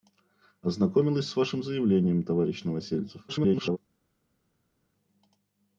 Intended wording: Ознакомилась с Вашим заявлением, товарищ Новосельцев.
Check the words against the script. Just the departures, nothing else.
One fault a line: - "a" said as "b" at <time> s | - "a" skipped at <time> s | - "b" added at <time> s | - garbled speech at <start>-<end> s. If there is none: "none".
- garbled speech at 3.3-3.8 s